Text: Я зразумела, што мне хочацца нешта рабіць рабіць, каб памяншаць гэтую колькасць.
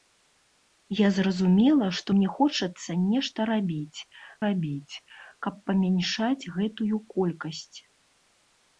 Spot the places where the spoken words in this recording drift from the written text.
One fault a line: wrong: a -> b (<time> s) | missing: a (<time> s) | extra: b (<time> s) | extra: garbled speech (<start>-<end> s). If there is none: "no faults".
no faults